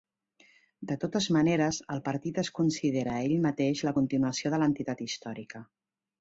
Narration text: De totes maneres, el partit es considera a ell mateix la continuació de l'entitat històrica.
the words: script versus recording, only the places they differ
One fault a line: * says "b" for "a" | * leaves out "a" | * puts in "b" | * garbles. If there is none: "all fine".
all fine